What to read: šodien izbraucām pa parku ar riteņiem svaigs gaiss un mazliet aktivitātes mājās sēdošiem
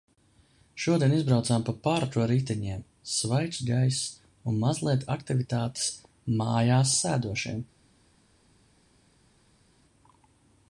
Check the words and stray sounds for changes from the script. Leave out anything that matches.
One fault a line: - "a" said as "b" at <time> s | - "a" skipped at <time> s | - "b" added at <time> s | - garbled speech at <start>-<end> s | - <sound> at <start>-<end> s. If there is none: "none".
none